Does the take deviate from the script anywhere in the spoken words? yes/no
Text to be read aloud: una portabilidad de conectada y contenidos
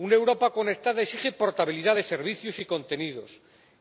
yes